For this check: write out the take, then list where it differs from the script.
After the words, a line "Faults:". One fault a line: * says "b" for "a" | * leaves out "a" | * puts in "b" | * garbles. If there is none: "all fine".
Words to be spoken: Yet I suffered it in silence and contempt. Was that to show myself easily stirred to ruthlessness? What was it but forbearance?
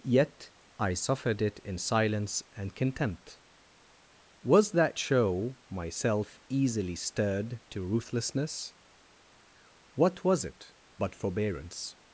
Yet I suffered it in silence and contempt. Was that show myself easily stirred to ruthlessness? What was it but forbearance?
Faults:
* leaves out "to"